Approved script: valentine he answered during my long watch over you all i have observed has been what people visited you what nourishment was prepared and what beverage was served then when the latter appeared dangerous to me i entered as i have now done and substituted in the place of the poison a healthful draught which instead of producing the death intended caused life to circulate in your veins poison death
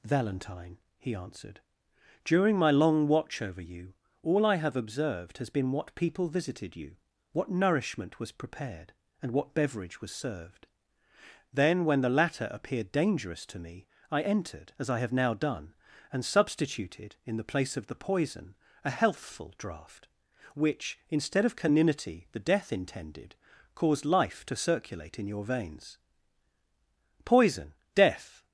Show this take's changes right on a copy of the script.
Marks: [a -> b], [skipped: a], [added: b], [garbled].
valentine he answered during my long watch over you all i have observed has been what people visited you what nourishment was prepared and what beverage was served then when the latter appeared dangerous to me i entered as i have now done and substituted in the place of the poison a healthful draught which instead of [producing -> caninity] the death intended caused life to circulate in your veins poison death